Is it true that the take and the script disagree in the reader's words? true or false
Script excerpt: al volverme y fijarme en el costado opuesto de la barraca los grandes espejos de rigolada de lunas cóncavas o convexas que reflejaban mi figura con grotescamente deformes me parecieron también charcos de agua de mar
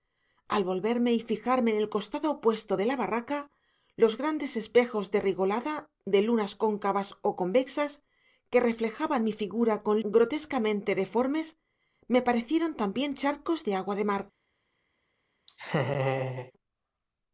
false